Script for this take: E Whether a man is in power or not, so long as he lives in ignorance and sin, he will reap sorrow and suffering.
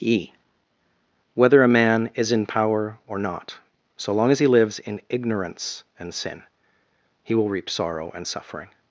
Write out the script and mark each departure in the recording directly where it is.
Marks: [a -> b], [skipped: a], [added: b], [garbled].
E Whether a man is in power or not, so long as he lives in ignorance and sin, he will reap sorrow and suffering.